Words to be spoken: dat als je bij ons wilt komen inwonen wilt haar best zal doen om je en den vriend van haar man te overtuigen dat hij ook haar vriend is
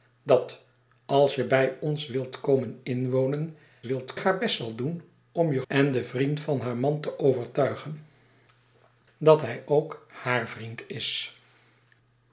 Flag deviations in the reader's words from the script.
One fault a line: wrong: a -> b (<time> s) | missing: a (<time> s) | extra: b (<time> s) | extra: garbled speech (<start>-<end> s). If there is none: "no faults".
no faults